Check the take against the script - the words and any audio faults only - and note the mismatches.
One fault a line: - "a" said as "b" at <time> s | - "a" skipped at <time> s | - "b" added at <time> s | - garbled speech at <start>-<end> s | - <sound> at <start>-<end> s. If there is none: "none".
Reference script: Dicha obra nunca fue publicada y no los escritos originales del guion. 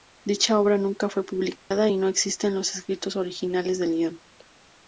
- dropout at 1.6-1.7 s
- "existen" added at 2.1 s